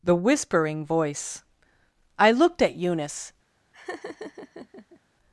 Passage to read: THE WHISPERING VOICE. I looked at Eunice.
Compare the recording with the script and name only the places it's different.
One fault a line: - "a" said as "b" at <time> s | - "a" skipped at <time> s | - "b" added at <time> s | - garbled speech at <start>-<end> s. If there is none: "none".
none